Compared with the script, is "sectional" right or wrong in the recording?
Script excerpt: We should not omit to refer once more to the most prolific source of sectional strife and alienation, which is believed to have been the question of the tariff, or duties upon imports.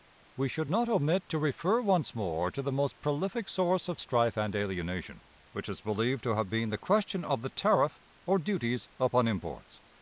wrong